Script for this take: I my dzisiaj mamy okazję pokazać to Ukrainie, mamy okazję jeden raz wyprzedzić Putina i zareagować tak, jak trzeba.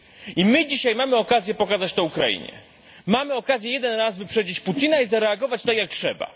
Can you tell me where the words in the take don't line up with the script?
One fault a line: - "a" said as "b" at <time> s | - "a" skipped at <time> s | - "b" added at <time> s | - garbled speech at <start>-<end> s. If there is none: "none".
none